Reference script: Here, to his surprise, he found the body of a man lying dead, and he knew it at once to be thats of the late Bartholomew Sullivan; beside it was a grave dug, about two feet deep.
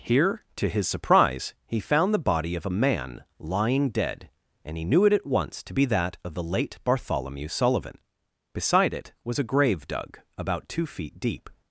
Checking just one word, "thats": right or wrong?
wrong